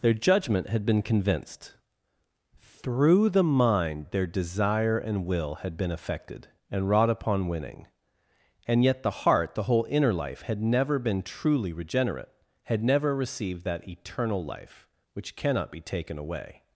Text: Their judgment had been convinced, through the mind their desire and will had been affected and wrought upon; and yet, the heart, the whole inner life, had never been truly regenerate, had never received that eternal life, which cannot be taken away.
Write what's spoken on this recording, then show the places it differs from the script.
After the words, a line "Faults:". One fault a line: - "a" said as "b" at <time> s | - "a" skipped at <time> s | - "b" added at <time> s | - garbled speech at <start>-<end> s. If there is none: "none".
Their judgment had been convinced, through the mind their desire and will had been affected and wrought upon; winning and yet, the heart, the whole inner life, had never been truly regenerate, had never received that eternal life, which cannot be taken away.
Faults:
- "winning" added at 7.5 s